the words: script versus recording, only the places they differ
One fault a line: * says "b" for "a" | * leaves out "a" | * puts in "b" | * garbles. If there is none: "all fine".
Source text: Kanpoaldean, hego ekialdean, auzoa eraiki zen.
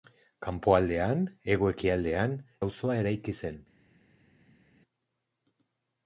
all fine